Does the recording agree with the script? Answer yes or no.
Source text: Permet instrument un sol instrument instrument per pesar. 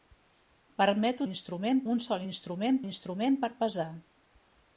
yes